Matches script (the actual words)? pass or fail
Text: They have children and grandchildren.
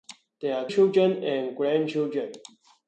pass